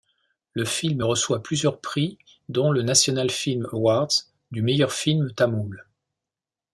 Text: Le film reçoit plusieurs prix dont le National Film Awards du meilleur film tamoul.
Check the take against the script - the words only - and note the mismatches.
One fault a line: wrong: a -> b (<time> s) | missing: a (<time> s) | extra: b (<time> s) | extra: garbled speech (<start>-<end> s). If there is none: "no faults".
no faults